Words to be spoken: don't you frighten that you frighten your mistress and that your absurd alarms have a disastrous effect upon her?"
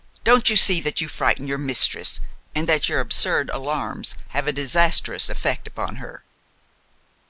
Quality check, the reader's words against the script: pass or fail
fail